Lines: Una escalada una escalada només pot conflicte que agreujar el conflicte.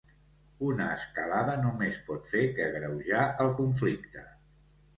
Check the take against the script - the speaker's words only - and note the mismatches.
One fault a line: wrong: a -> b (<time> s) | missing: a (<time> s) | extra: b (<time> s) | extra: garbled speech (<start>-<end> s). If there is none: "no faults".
missing: una escalada (1.6 s)
wrong: conflicte -> fer (2.3 s)